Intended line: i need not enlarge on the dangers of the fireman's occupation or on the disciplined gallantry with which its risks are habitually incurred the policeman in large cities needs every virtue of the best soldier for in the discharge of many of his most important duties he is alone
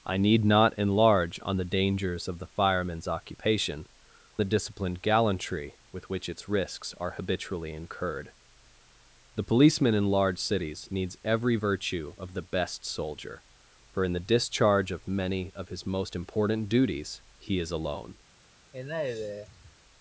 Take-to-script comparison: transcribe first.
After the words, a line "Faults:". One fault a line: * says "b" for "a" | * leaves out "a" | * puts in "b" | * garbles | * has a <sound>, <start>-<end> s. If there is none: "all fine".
i need not enlarge on the dangers of the fireman's occupation the disciplined gallantry with which its risks are habitually incurred the policeman in large cities needs every virtue of the best soldier for in the discharge of many of his most important duties he is alone
Faults:
* leaves out "or on"
* has a sigh, 18.7-19.8 s